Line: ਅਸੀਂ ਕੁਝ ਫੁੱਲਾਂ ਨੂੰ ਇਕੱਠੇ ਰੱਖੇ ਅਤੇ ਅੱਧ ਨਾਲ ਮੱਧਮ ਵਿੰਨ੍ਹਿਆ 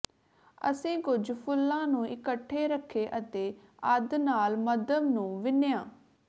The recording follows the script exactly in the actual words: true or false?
false